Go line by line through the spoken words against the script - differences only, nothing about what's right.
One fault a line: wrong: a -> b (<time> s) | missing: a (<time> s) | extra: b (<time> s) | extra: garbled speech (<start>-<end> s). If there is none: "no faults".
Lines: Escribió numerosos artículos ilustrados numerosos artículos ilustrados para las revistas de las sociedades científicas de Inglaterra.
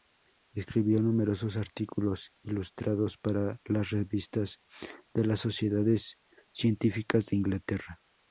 missing: numerosos artículos ilustrados (3.2 s)